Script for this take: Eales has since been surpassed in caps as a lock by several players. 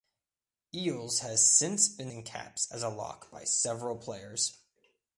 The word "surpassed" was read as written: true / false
false